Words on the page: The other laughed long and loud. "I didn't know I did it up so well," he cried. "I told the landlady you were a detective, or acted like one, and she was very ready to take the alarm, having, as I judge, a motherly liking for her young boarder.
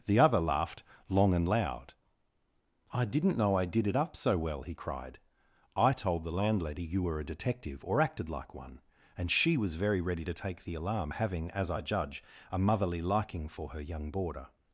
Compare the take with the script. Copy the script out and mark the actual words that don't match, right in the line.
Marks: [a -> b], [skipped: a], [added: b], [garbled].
The other laughed long and loud. "I didn't know I did it up so well," he cried. "I told the landlady you were a detective, or acted like one, and she was very ready to take the alarm, having, as I judge, a motherly liking for her young boarder.